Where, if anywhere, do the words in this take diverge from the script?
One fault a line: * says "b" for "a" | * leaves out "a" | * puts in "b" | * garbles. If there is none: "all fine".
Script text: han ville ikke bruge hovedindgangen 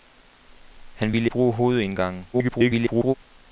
* leaves out "ikke"
* garbles